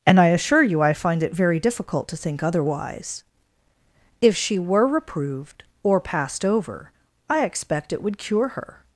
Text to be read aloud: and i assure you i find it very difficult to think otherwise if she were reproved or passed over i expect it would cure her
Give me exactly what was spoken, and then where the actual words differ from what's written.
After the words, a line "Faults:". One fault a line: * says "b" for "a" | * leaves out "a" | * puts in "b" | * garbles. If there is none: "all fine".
and i assure you i find it very difficult to think otherwise if she were reproved or passed over i expect it would cure her
Faults:
all fine